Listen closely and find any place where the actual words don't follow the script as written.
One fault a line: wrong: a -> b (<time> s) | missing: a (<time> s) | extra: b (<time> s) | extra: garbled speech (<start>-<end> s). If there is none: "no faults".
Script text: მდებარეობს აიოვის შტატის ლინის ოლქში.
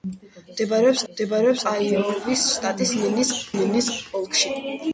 extra: მდებარეობს (1.1 s)
extra: ლინის (3.5 s)